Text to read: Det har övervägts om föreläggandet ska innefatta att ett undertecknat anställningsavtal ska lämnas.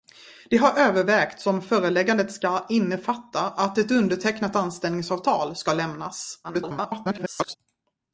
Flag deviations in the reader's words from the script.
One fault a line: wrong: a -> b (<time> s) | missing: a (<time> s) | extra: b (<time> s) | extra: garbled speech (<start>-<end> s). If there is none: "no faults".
extra: garbled speech (6.4-7.6 s)